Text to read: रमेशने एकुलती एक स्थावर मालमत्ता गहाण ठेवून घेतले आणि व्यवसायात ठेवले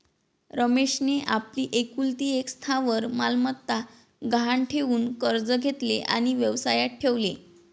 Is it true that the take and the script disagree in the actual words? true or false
true